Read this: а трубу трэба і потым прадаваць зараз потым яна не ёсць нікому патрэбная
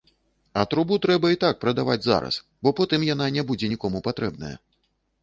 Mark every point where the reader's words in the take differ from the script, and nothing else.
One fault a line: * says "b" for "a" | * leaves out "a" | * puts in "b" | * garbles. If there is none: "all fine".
* says "так" for "потым"
* puts in "бо"
* says "будзе" for "ёсць"